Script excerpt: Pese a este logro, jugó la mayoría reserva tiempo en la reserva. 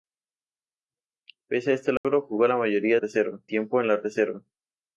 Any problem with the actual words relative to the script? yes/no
no